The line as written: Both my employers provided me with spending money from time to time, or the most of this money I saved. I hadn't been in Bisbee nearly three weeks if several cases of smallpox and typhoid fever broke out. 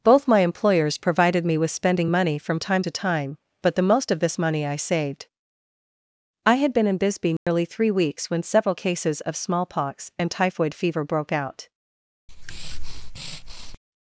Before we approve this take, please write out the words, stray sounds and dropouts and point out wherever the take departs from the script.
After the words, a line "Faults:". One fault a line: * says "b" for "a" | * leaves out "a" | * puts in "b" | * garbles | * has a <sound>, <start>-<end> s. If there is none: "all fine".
Both my employers provided me with spending money from time to time, but the most of this money I saved. I had been in Bisbee nearly three weeks when several cases of smallpox and typhoid fever broke out.
Faults:
* says "but" for "or"
* says "had" for "hadn't"
* has a dropout, 7.4-7.5 s
* says "when" for "if"
* has a breath, 12.3-13.8 s